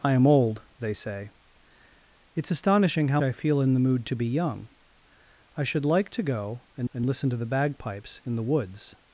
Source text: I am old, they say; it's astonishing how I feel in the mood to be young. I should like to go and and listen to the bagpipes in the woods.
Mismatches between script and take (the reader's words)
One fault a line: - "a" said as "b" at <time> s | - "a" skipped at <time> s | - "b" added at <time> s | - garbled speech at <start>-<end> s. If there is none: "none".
none